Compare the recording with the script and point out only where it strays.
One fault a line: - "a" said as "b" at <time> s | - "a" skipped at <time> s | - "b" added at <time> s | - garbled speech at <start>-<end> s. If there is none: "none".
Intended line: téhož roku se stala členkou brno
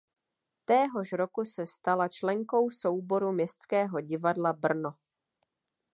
- "souboru městského divadla" added at 2.7 s